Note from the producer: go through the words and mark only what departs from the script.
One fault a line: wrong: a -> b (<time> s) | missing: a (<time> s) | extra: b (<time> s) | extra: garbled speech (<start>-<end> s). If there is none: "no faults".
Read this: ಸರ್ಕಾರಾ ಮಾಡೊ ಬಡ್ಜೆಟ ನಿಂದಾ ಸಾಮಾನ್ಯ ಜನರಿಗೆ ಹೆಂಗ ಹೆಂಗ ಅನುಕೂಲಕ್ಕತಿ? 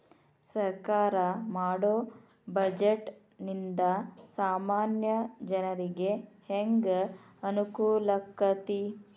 missing: ಹೆಂಗ (6.9 s)